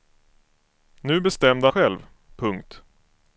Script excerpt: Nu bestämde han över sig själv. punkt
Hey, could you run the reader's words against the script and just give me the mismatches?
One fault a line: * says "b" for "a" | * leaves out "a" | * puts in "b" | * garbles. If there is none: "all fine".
* leaves out "han över sig"